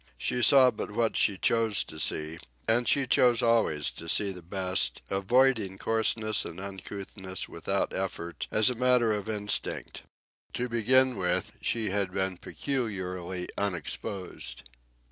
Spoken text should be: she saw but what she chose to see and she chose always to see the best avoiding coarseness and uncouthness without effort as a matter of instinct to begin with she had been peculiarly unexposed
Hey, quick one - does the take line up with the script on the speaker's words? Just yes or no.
yes